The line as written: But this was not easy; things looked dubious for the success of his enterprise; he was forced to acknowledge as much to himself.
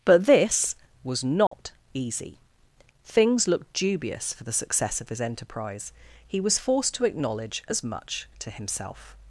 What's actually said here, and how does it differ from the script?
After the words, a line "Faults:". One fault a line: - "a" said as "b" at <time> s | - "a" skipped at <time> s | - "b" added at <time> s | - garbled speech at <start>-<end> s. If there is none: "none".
But this was not easy; things looked dubious for the success of his enterprise; he was forced to acknowledge as much to himself.
Faults:
none